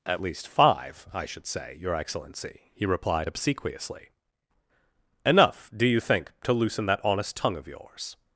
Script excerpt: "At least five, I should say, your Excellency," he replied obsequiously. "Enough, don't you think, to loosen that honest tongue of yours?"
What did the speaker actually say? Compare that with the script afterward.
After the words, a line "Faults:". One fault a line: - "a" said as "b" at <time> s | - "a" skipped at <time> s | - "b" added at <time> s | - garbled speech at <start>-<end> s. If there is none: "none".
"At least five, I should say, your Excellency," he replied obsequiously. "Enough, do you think, to loosen that honest tongue of yours?"
Faults:
- "don't" said as "do" at 5.7 s